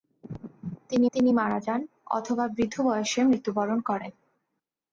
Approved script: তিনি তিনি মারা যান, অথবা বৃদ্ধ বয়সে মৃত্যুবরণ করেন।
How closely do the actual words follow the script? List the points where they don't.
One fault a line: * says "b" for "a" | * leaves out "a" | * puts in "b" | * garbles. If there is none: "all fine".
all fine